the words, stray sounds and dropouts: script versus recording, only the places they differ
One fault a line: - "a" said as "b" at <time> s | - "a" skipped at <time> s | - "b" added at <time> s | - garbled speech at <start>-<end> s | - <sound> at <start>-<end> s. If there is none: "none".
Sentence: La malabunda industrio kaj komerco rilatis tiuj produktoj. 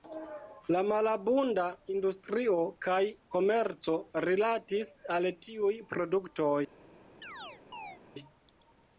- "al" added at 5.2 s
- chirp at 7.2-8.0 s